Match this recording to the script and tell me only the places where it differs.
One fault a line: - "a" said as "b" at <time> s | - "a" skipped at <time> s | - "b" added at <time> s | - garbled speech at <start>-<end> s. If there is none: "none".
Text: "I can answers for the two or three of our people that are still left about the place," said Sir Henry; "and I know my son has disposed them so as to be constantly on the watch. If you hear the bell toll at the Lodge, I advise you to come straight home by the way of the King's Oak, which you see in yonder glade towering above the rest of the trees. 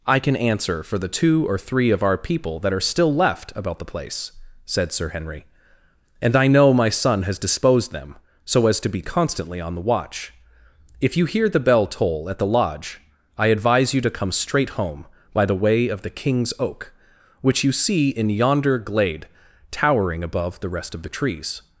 - "answers" said as "answer" at 0.3 s